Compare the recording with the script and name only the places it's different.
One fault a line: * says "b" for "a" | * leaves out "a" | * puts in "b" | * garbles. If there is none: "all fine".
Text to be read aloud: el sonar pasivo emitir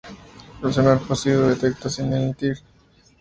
* puts in "detecta sin"